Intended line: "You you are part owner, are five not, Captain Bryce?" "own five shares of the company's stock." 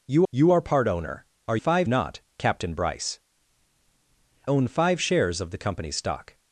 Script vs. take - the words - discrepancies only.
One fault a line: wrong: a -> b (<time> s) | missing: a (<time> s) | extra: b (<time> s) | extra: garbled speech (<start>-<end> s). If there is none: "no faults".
no faults